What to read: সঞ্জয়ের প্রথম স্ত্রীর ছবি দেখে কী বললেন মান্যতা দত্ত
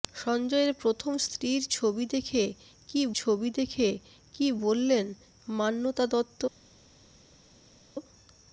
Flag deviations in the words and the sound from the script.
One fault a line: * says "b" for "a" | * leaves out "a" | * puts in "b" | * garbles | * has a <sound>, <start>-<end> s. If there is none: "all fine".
* puts in "ছবি দেখে কী"